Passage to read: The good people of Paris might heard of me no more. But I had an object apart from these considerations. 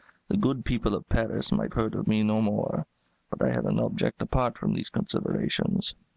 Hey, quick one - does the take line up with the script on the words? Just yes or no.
yes